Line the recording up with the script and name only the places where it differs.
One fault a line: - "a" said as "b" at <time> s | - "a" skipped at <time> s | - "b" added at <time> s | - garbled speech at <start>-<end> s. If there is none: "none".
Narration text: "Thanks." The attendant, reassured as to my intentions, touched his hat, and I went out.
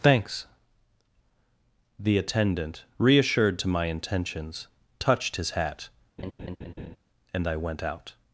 - "as" skipped at 3.6 s